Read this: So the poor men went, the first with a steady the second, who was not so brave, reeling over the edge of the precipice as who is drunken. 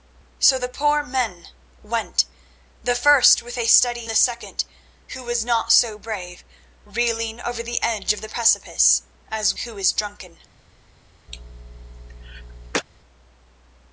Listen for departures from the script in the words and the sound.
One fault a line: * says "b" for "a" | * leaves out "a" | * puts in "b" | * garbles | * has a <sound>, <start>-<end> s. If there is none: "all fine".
* has a cough, 11.3-12.8 s